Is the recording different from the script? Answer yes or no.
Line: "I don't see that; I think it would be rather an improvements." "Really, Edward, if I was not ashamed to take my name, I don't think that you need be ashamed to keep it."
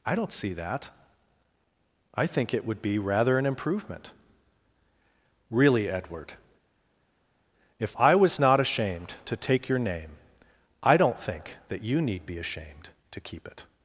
yes